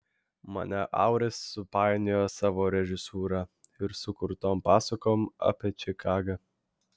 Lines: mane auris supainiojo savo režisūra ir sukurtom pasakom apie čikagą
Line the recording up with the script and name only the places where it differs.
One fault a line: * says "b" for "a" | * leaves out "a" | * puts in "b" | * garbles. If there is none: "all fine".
all fine